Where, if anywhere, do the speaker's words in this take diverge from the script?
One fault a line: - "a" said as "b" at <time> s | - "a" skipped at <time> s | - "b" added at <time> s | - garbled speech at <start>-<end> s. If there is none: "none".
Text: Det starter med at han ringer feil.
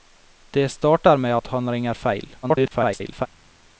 - garbled speech at 2.4-3.3 s